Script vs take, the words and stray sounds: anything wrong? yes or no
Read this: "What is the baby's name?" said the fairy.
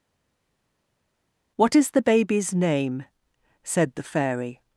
no